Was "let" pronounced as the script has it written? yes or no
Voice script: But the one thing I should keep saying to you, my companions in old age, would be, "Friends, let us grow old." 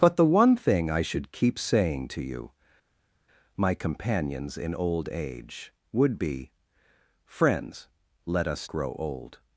yes